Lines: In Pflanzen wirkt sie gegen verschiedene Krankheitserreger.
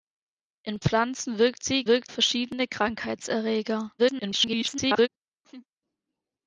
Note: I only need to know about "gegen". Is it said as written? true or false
false